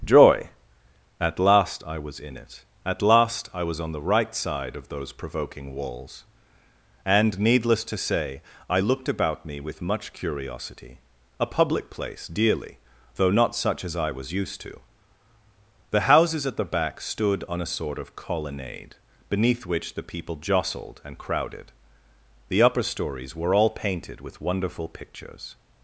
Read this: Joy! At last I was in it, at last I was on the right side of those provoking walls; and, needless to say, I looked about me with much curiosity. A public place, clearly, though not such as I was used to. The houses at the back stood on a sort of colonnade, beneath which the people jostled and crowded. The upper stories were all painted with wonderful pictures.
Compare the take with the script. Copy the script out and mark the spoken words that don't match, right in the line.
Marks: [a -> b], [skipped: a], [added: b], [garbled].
Joy! At last I was in it, at last I was on the right side of those provoking walls; and, needless to say, I looked about me with much curiosity. A public place, [clearly, -> dearly] though not such as I was used to. The houses at the back stood on a sort of colonnade, beneath which the people jostled and crowded. The upper stories were all painted with wonderful pictures.